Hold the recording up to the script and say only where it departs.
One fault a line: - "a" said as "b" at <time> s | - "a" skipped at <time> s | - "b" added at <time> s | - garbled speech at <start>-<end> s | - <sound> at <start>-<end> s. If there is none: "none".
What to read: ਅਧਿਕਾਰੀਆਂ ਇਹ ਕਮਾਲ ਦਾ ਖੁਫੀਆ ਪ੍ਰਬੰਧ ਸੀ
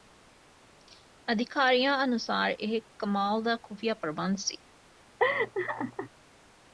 - "ਅਨੁਸਾਰ" added at 2.0 s
- laugh at 5.2-6.1 s